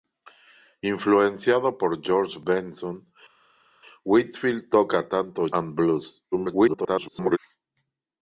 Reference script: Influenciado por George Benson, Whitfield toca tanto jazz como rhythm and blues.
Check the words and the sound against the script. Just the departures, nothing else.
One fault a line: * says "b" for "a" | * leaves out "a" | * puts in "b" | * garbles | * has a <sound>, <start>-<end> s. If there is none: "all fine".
* leaves out "jazz como rhythm"
* garbles